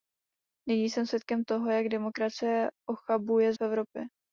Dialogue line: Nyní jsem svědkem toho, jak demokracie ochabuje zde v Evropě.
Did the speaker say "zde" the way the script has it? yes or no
no